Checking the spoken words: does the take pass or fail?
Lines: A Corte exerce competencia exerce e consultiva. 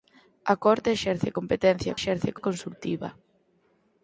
pass